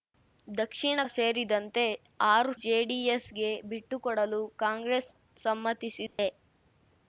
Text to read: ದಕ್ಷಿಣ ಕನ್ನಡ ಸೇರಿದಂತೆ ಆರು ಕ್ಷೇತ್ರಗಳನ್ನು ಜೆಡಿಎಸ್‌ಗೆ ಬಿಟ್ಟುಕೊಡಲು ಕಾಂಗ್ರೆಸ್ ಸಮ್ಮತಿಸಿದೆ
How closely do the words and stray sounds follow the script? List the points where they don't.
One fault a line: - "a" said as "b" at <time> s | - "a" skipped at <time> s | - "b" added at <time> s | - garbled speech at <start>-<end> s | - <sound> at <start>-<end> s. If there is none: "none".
- "ಕನ್ನಡ" skipped at 1.0 s
- "ಕ್ಷೇತ್ರಗಳನ್ನು" skipped at 2.5 s
- dropout at 6.1-6.2 s